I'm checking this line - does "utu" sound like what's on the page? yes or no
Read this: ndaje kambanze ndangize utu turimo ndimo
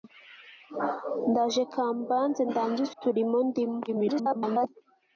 no